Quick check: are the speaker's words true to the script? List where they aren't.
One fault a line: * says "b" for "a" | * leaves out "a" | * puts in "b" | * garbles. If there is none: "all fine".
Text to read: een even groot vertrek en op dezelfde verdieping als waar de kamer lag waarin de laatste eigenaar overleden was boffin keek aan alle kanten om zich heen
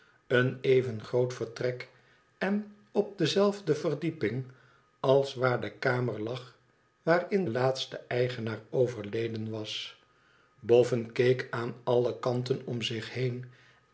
* leaves out "de"